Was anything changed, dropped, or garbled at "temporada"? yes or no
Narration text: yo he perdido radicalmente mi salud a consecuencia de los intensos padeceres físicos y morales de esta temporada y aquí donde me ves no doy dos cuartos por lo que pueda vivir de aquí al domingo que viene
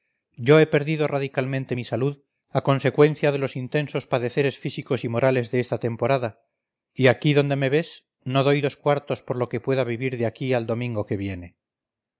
no